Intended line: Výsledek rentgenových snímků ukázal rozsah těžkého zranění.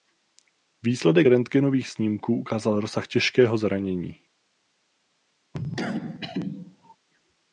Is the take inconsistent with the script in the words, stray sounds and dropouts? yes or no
yes